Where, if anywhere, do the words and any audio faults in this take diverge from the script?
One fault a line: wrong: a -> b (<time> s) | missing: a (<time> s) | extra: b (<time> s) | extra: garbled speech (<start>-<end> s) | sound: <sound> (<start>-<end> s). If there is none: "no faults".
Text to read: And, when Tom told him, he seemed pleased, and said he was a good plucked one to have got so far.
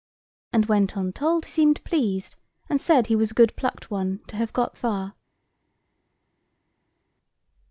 missing: him he (1.4 s)
missing: so (4.8 s)